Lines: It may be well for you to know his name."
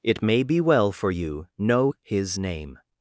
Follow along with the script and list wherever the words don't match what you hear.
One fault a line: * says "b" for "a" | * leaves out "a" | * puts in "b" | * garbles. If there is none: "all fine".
* leaves out "to"